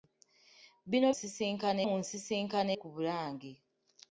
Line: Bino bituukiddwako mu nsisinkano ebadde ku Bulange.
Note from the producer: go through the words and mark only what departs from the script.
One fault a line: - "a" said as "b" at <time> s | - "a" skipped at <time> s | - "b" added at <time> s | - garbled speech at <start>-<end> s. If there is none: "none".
- "bituukiddwako" said as "nsisinkano" at 1.1 s
- "ebadde" skipped at 2.7 s